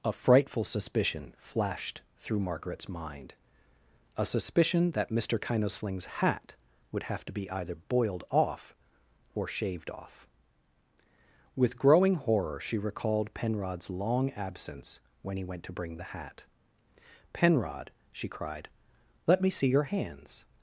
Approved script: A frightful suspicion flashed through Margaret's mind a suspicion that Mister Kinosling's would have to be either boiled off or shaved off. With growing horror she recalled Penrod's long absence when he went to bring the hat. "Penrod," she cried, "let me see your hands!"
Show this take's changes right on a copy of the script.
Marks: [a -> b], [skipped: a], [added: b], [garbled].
A frightful suspicion flashed through Margaret's mind a suspicion that Mister Kinosling's [added: hat] would have to be either boiled off or shaved off. With growing horror she recalled Penrod's long absence when he went to bring the hat. "Penrod," she cried, "let me see your hands!"